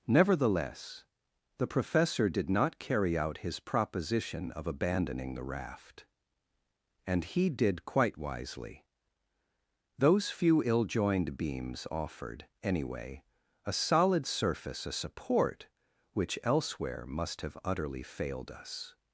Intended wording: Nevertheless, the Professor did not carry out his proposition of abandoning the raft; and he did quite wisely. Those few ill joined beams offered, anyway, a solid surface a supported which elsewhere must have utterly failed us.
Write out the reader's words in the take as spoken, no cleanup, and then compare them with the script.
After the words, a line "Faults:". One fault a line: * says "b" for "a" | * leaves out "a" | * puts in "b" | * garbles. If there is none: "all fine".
Nevertheless, the Professor did not carry out his proposition of abandoning the raft; and he did quite wisely. Those few ill joined beams offered, anyway, a solid surface a support which elsewhere must have utterly failed us.
Faults:
* says "support" for "supported"